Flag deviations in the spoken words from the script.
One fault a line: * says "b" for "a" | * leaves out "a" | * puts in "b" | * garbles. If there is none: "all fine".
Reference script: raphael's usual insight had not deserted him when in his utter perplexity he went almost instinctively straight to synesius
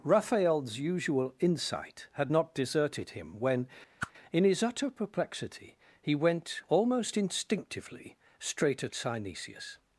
* says "at" for "to"